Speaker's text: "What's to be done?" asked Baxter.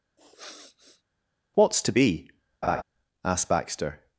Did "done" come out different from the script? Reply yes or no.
yes